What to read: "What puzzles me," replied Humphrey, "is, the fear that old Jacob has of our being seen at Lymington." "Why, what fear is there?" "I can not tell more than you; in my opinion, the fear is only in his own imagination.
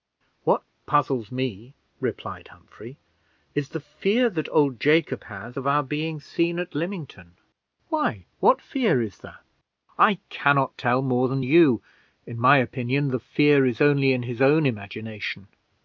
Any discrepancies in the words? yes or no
no